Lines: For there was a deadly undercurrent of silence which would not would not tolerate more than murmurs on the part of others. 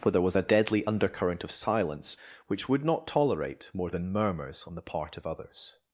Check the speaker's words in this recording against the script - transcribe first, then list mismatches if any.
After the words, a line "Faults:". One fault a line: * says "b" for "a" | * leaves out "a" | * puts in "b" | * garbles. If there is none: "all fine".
For there was a deadly undercurrent of silence which would not tolerate more than murmurs on the part of others.
Faults:
* leaves out "would not"